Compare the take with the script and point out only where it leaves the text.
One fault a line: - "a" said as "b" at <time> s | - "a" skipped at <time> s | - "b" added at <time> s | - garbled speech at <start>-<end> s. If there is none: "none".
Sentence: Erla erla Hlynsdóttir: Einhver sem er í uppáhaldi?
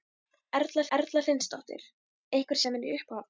none